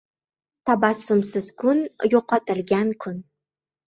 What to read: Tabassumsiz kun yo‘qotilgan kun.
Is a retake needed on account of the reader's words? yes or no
no